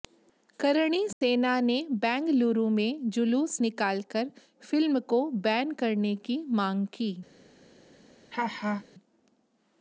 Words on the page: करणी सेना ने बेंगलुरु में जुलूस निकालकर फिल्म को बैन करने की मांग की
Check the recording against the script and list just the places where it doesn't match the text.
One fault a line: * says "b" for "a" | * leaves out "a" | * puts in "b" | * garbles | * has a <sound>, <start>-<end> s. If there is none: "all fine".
* has a dropout, 1.1-1.2 s
* has a laugh, 8.3-8.8 s